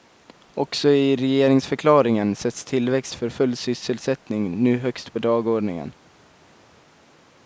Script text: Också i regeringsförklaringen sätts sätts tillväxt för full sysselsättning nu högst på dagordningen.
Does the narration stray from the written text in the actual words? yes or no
yes